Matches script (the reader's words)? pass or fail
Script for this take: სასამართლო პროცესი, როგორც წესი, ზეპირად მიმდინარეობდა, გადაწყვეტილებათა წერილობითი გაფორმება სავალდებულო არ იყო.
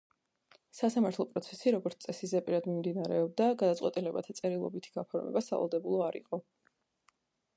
pass